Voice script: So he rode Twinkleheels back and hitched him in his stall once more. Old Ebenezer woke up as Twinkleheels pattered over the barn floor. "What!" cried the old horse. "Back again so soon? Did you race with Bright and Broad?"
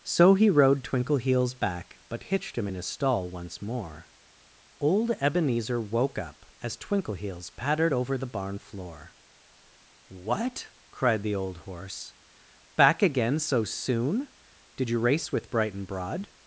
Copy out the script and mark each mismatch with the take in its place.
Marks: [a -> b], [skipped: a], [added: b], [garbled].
So he rode Twinkleheels back [and -> but] hitched him in his stall once more. Old Ebenezer woke up as Twinkleheels pattered over the barn floor. "What!" cried the old horse. "Back again so soon? Did you race with Bright and Broad?"